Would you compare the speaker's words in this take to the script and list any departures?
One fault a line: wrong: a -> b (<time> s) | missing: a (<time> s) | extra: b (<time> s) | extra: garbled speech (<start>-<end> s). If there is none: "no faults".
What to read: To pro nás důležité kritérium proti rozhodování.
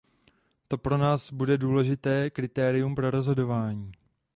extra: bude (1.3 s)
wrong: proti -> pro (2.9 s)